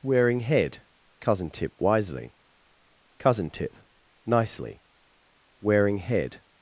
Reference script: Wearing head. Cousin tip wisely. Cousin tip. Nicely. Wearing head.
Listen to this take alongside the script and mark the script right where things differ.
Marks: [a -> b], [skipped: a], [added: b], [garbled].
Wearing head. Cousin tip wisely. Cousin tip. Nicely. Wearing head.